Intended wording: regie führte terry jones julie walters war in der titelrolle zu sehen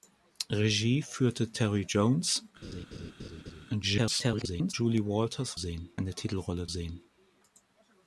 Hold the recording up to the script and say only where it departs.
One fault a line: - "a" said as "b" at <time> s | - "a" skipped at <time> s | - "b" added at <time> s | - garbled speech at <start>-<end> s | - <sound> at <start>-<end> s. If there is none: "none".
- laugh at 2.6-3.7 s
- garbled speech at 3.8-4.7 s
- "war" said as "sehen" at 5.5 s
- "zu" skipped at 6.7 s